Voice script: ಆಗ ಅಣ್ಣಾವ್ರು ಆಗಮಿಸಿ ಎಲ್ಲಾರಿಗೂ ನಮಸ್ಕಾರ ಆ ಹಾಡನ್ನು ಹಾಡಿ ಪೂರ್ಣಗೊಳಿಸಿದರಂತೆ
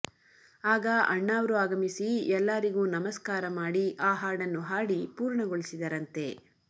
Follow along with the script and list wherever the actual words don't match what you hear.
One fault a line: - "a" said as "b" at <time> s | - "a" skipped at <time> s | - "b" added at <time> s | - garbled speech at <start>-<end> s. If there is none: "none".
- "ಮಾಡಿ" added at 3.6 s